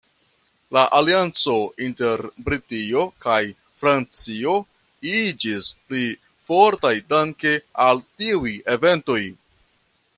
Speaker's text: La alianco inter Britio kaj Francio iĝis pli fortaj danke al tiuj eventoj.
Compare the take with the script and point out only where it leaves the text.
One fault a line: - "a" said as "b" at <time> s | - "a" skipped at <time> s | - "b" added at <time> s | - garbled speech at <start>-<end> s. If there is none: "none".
none